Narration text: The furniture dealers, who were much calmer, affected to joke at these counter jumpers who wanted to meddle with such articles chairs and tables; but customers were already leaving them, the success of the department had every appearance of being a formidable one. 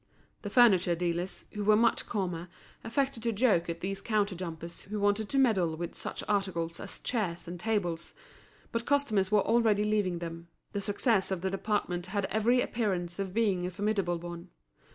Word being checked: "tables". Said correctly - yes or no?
yes